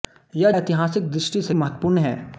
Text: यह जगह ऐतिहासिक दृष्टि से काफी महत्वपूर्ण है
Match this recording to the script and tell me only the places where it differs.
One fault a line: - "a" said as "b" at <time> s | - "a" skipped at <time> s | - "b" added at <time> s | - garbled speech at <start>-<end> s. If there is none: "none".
- "जगह" skipped at 0.5 s
- "काफी" skipped at 1.5 s